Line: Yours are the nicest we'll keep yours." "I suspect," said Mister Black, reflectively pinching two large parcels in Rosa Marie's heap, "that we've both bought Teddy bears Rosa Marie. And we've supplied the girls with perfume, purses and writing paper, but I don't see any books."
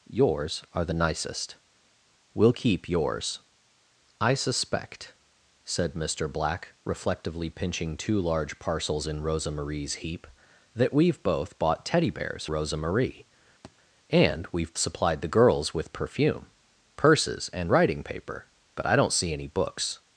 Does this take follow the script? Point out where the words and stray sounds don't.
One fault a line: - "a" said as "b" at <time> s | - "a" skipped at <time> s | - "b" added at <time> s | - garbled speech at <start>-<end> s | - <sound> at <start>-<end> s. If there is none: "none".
- thud at 13.6-13.8 s